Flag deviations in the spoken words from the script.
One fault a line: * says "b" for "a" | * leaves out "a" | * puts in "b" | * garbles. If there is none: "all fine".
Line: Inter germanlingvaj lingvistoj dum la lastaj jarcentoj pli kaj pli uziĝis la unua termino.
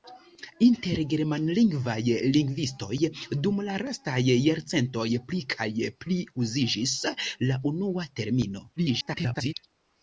* garbles